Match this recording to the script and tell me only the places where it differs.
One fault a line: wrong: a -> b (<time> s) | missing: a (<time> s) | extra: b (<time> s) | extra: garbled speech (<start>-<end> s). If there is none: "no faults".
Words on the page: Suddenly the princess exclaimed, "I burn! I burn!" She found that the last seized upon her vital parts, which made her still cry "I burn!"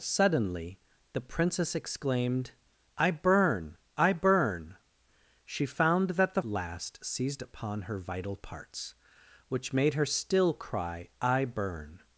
no faults